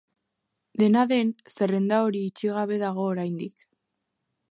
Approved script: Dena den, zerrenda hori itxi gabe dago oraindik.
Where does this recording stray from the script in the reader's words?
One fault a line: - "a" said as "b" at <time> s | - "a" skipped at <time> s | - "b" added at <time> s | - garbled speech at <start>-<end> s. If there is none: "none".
none